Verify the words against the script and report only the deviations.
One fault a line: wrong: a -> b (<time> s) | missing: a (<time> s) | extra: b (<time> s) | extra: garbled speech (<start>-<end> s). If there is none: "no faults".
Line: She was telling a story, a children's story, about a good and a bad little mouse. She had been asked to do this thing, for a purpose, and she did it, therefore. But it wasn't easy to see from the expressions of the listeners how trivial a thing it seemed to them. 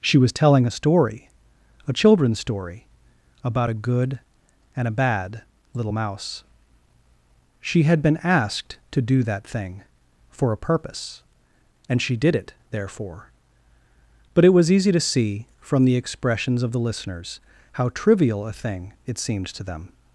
wrong: this -> that (9.2 s)
wrong: wasn't -> was (14.5 s)